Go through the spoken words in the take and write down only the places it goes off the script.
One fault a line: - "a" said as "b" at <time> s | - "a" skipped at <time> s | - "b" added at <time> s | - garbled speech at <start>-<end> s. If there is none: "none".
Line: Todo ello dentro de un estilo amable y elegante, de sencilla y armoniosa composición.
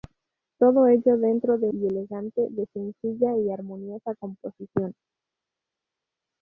- "un estilo amable" skipped at 1.7 s